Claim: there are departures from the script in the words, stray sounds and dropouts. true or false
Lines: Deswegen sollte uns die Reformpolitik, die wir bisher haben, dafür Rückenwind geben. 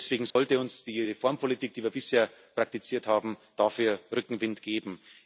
true